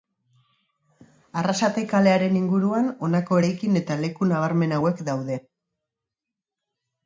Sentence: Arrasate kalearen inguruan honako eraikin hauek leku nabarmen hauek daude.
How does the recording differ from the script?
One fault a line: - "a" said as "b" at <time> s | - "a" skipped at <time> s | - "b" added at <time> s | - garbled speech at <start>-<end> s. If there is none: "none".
- "hauek" said as "eta" at 3.8 s